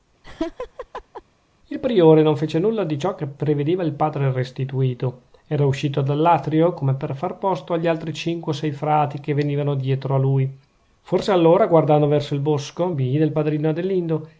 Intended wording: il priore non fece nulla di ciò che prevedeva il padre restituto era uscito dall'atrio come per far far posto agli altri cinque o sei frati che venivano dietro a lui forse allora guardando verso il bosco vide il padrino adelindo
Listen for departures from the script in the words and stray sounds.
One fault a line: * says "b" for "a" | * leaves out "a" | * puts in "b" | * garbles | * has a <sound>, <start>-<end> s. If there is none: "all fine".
* has a laugh, 0.2-1.2 s
* leaves out "far"